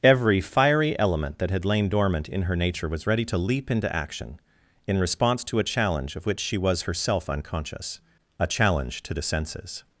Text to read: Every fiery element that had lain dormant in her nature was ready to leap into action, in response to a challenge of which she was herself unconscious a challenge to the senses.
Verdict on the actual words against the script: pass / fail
pass